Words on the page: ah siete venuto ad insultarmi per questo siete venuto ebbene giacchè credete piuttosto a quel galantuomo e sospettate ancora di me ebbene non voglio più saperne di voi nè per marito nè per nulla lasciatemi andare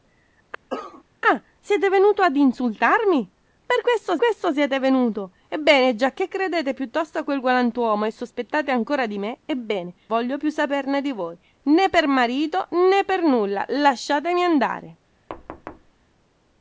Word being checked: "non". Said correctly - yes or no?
no